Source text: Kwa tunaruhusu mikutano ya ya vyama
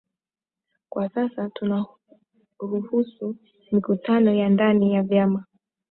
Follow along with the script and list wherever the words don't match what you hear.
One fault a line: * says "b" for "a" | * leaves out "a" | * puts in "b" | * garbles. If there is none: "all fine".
* puts in "sasa"
* puts in "ndani"